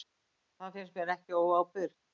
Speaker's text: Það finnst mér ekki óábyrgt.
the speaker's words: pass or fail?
pass